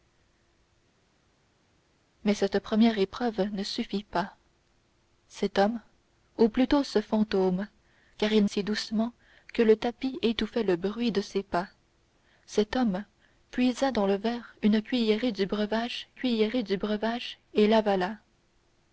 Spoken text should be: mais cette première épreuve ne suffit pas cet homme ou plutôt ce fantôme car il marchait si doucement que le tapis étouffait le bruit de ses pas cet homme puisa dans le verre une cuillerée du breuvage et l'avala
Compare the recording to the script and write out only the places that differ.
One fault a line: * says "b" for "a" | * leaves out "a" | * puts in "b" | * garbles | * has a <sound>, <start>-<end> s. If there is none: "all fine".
* leaves out "marchait"
* puts in "cuillerée du breuvage"